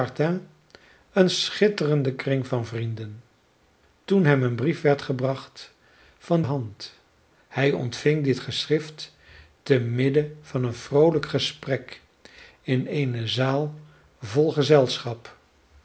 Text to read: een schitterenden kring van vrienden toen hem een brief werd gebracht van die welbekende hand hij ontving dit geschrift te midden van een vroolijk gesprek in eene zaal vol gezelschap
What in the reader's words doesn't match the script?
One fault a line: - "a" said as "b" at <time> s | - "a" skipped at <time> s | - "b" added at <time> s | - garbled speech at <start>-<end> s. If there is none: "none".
- "die welbekende" skipped at 6.4 s